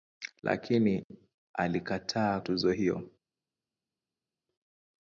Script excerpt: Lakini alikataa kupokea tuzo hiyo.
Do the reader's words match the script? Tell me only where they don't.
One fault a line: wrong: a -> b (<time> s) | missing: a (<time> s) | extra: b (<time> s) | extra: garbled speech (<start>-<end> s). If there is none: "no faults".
missing: kupokea (2.4 s)